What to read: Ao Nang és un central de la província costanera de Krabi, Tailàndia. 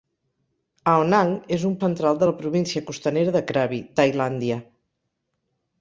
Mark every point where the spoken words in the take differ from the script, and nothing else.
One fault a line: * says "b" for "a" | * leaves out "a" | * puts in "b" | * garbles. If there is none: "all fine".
all fine